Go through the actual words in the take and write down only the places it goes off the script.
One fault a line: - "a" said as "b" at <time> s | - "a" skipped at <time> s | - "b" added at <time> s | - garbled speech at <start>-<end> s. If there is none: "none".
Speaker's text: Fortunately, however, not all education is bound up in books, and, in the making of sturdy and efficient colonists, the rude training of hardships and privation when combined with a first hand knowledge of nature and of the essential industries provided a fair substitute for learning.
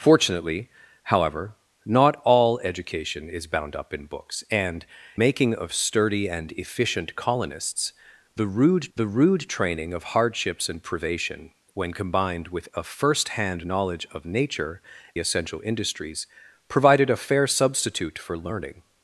- "in the" skipped at 4.8 s
- "the rude" added at 8.9 s
- "and of the" skipped at 14.8 s